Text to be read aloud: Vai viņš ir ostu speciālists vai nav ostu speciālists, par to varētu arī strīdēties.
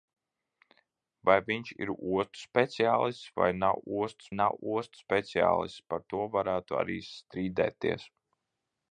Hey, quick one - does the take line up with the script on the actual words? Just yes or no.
no